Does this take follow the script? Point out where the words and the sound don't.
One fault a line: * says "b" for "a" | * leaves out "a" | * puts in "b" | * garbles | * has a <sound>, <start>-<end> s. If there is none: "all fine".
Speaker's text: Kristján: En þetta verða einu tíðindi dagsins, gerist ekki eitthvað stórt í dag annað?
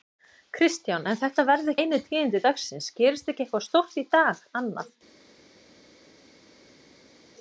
all fine